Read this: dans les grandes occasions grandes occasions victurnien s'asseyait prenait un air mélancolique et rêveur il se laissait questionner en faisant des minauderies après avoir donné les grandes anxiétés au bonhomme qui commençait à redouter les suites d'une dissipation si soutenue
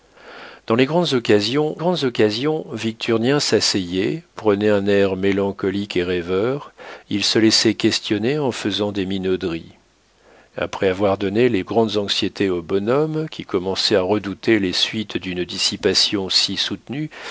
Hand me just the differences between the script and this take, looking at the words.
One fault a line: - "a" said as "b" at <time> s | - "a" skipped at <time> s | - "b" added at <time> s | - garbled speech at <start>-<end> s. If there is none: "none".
none